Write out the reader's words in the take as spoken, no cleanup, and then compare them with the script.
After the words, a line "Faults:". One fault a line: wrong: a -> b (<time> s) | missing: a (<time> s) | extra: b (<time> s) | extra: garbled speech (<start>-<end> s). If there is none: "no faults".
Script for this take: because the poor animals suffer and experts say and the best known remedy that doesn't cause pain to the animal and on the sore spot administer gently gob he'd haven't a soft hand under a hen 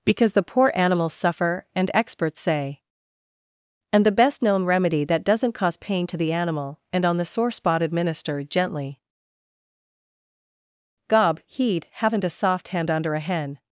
because the poor animals suffer and experts say and the best known remedy that doesn't cause pain to the animal and on the sore spot administer gently gob he'd haven't a soft hand under a hen
Faults:
no faults